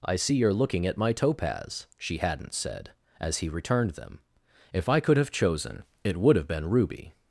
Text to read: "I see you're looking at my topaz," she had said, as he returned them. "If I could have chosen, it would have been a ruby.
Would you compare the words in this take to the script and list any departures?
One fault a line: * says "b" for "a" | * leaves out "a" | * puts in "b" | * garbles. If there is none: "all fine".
* says "hadn't" for "had"
* leaves out "a"